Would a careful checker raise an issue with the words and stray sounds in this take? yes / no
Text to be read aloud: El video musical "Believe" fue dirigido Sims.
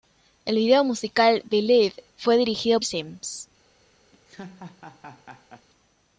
yes